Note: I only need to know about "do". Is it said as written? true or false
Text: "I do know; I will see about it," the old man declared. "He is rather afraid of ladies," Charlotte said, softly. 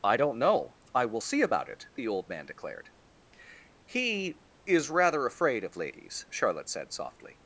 false